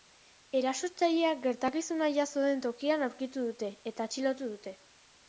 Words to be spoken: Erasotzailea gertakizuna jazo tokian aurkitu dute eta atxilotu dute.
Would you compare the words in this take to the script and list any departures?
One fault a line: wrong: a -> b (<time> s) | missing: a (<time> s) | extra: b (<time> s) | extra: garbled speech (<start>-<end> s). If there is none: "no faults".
extra: den (2.5 s)